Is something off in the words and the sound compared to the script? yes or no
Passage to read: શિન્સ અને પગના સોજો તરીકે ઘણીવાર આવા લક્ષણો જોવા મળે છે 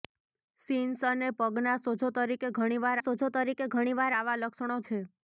yes